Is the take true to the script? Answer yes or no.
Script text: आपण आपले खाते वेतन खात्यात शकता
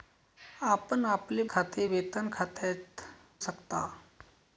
yes